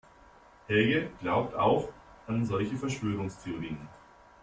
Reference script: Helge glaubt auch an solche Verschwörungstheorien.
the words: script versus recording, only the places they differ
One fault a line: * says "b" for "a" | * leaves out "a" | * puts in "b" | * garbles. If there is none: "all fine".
all fine